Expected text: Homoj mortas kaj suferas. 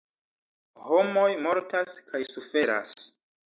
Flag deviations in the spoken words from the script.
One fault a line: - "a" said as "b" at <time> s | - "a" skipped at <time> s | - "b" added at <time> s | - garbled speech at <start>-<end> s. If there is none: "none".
none